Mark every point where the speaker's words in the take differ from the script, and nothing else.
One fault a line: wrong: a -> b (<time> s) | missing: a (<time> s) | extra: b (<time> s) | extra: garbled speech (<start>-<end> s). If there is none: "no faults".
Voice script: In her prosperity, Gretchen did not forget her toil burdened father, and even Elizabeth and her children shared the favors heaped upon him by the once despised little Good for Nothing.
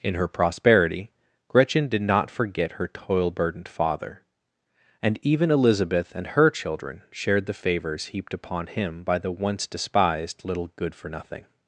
no faults